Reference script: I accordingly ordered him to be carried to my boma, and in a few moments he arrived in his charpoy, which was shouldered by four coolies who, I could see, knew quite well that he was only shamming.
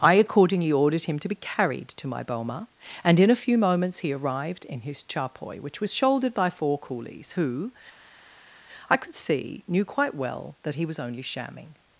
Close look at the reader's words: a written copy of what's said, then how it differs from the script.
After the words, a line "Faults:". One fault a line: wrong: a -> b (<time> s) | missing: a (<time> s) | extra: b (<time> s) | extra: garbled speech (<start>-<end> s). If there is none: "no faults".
I accordingly ordered him to be carried to my boma, and in a few moments he arrived in his charpoy, which was shouldered by four coolies who, I could see, knew quite well that he was only shamming.
Faults:
no faults